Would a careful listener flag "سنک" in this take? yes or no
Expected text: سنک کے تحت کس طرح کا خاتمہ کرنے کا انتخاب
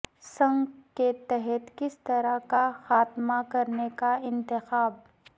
no